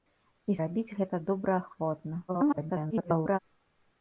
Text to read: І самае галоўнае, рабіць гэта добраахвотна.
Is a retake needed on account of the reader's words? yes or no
yes